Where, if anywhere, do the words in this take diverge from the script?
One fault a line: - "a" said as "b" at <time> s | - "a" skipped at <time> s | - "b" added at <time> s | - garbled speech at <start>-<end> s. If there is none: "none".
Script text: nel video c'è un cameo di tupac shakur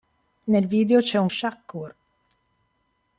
- "cameo di tupac" skipped at 1.3 s